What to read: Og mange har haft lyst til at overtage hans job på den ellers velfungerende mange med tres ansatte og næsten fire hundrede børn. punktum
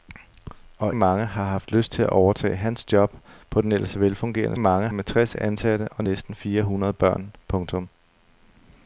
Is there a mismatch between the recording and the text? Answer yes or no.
no